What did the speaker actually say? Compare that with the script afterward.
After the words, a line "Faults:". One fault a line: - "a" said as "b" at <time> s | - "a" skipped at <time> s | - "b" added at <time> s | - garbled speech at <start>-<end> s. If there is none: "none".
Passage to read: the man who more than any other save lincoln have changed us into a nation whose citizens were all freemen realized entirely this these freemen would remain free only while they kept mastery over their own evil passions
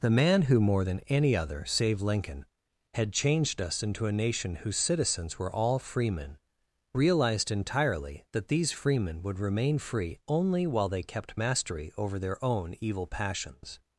the man who more than any other save lincoln had changed us into a nation whose citizens were all freemen realized entirely that these freemen would remain free only while they kept mastery over their own evil passions
Faults:
- "have" said as "had" at 2.9 s
- "this" said as "that" at 8.3 s